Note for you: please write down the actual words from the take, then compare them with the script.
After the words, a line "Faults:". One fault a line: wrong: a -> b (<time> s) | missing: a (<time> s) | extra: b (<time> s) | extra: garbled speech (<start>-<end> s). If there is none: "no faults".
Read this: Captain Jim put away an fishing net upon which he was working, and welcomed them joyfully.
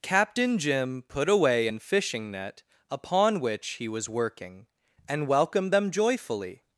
Captain Jim put away an fishing net upon which he was working, and welcomed them joyfully.
Faults:
no faults